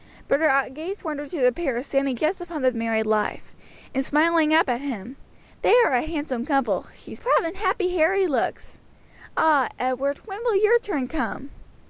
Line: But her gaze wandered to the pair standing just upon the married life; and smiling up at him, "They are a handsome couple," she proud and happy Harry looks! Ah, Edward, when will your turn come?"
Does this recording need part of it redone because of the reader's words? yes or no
no